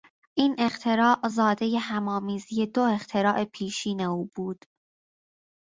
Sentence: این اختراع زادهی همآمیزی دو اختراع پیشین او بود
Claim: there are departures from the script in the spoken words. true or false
false